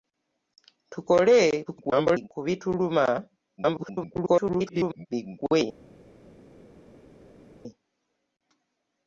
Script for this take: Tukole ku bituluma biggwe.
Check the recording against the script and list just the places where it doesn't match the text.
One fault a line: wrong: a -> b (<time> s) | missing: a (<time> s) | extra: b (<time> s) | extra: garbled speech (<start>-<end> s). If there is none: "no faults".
extra: garbled speech (1.7-2.3 s)
extra: garbled speech (3.6-5.1 s)